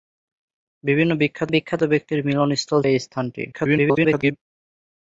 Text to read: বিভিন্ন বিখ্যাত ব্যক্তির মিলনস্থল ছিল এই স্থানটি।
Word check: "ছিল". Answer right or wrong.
wrong